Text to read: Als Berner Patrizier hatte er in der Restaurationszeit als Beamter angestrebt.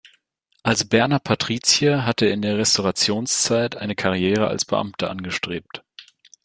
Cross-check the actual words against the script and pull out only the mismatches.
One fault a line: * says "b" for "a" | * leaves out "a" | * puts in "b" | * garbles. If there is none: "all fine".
* puts in "eine Karriere"